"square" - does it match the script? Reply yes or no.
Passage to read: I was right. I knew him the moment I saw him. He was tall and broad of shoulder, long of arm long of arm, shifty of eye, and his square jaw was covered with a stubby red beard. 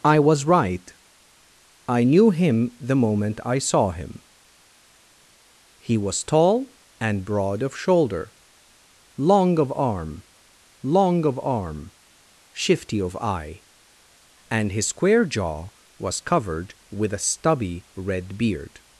yes